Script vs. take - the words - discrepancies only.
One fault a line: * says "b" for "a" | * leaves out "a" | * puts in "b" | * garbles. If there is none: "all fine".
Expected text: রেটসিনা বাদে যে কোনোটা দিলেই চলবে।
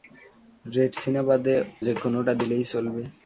all fine